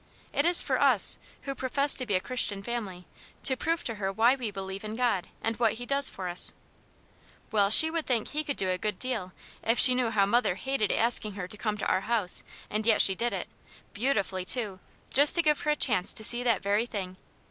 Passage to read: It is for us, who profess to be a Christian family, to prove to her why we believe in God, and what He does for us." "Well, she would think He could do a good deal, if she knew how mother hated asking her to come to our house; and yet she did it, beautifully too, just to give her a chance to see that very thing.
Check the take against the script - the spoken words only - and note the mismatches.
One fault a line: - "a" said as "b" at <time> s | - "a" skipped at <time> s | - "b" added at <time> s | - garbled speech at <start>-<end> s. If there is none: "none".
none